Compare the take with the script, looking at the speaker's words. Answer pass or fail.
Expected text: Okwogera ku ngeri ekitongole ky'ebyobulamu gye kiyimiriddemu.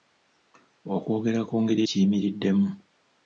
fail